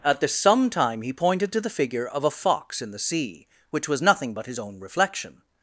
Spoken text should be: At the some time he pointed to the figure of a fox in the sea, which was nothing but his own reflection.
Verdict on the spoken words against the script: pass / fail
pass